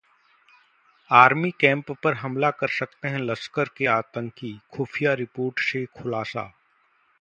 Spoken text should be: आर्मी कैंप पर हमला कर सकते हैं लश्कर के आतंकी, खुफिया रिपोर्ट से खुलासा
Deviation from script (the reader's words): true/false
false